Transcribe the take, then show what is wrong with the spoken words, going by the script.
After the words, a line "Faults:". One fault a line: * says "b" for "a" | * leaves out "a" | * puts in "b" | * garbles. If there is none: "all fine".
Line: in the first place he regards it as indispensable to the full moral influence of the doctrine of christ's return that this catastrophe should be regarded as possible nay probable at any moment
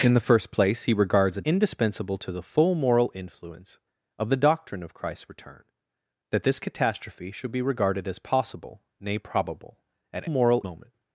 in the first place he regards it indispensable to the full moral influence of the doctrine of christ's return that this catastrophe should be regarded as possible nay probable at moral moment
Faults:
* leaves out "as"
* says "moral" for "any"